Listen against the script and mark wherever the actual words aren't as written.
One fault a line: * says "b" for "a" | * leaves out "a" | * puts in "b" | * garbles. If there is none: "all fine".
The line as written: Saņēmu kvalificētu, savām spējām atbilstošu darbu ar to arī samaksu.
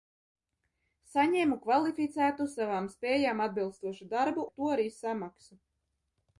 all fine